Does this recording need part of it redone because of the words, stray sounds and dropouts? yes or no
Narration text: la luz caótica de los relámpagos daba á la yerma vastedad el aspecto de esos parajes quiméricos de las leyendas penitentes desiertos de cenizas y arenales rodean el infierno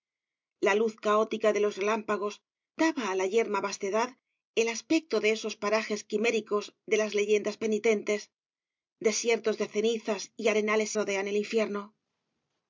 no